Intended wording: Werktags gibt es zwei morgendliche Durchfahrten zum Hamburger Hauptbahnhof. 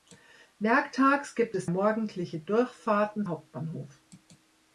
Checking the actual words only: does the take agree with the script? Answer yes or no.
no